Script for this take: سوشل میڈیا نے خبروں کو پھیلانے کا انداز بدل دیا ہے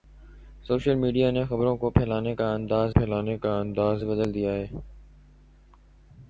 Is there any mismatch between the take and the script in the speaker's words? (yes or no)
yes